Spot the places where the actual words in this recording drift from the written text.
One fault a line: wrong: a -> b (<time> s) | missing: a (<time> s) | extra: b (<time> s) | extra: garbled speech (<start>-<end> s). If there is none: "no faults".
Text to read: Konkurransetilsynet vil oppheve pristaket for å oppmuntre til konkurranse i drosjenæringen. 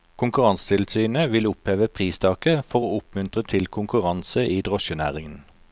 no faults